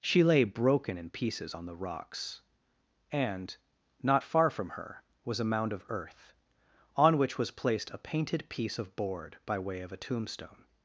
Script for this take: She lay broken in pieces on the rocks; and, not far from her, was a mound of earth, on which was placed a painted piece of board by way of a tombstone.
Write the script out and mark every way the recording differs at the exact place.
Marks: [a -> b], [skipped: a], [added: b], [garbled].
She lay broken in pieces on the rocks; and, not far from her, was a mound of earth, on which was placed a painted piece of board by way of a tombstone.